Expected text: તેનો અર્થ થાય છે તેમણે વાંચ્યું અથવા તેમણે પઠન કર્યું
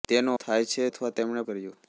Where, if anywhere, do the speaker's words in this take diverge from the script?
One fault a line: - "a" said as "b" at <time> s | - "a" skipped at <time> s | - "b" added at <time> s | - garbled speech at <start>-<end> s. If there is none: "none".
- "અર્થ" skipped at 0.3 s
- "તેમણે વાંચ્યું" skipped at 0.8 s
- "પઠન" skipped at 1.4 s